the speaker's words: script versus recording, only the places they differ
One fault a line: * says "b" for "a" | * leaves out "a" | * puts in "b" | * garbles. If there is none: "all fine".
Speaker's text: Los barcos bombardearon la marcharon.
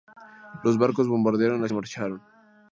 all fine